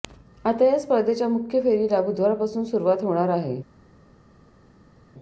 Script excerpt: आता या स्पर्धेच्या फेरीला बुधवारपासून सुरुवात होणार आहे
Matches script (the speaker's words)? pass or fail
fail